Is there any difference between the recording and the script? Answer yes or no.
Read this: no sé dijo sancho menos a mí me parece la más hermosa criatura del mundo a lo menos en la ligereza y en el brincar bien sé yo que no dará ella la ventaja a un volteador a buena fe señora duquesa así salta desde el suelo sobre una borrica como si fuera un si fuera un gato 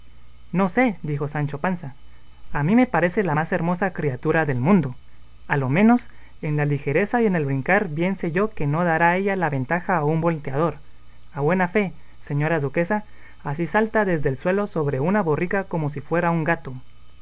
yes